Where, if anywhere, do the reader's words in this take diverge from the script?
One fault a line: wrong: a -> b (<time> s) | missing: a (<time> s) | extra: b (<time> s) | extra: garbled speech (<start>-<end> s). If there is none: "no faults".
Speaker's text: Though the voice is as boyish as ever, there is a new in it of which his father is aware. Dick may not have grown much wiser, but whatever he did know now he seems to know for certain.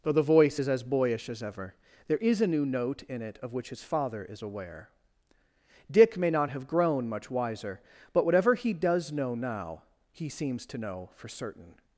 extra: note (2.6 s)
wrong: did -> does (8.7 s)